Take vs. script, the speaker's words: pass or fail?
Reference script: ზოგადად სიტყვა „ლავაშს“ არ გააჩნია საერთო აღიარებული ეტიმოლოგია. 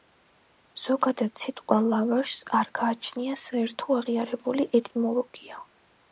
pass